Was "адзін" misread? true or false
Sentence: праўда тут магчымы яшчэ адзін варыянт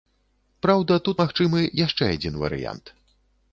false